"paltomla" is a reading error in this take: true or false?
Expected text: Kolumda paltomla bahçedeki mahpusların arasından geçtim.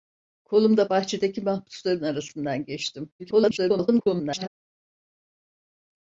true